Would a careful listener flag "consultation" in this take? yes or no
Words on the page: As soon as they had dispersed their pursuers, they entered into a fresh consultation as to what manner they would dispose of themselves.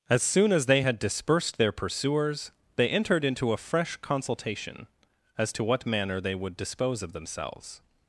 no